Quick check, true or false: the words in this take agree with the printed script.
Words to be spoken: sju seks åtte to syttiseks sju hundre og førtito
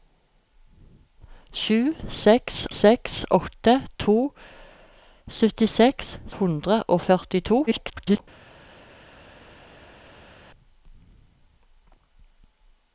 false